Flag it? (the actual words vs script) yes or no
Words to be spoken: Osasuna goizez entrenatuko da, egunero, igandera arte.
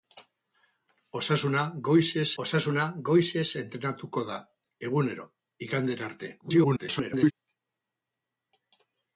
yes